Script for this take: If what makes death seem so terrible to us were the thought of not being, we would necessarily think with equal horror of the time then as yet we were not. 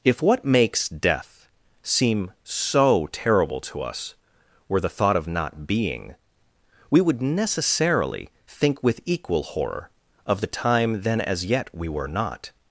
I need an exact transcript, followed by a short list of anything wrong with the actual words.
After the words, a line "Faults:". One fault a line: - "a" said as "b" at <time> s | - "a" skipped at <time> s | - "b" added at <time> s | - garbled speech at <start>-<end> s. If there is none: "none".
If what makes death seem so terrible to us were the thought of not being, we would necessarily think with equal horror of the time then as yet we were not.
Faults:
none